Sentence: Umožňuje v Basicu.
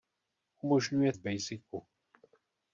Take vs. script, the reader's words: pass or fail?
pass